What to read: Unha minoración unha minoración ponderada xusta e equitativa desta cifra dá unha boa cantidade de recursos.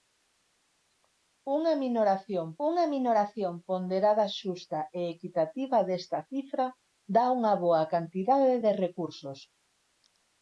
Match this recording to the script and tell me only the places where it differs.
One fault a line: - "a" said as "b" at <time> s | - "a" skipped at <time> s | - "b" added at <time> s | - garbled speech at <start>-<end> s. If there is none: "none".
none